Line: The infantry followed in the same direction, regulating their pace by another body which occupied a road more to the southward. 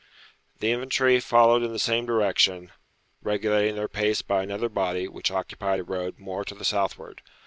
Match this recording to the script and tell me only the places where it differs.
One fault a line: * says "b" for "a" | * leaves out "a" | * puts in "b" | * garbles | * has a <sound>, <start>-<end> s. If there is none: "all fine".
all fine